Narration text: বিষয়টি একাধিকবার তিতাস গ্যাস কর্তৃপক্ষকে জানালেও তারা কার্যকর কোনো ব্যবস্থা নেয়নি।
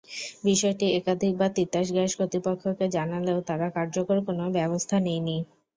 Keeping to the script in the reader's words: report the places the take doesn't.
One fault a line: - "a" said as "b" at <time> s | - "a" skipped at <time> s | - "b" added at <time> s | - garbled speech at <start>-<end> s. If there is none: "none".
none